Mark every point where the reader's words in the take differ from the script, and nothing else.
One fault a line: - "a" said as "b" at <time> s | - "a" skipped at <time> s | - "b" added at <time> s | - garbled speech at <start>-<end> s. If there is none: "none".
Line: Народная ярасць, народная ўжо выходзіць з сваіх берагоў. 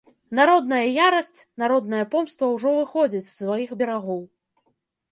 - "помста" added at 2.1 s